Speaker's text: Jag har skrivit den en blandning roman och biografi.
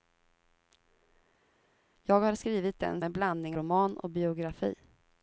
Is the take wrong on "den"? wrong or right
right